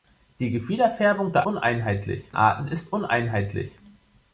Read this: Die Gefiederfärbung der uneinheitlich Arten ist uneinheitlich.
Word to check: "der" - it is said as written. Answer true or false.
true